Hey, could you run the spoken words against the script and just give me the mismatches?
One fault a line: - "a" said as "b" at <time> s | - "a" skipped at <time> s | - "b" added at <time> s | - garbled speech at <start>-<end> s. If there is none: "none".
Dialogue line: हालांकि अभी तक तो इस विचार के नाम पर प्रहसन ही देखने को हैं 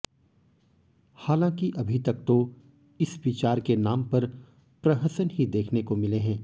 - "मिले" added at 6.0 s